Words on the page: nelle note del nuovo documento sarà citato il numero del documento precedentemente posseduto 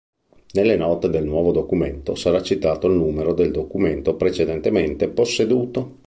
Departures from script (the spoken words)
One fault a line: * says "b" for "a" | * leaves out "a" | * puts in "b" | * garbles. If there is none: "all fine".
all fine